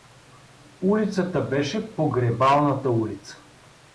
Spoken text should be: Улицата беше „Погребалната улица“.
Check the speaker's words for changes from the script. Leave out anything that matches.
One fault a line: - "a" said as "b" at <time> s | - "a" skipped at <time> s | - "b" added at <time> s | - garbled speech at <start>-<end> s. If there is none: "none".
none